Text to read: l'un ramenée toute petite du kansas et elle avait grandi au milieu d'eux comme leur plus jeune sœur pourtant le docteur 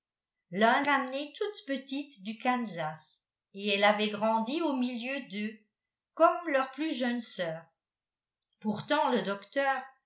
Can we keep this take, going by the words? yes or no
yes